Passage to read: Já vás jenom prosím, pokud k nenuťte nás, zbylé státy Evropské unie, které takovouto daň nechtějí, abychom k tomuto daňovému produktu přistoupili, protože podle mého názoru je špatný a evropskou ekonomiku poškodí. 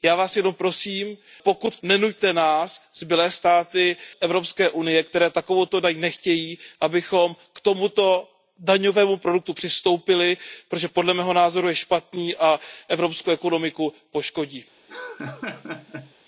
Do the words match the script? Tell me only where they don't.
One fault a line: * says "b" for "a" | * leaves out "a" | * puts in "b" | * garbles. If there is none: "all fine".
all fine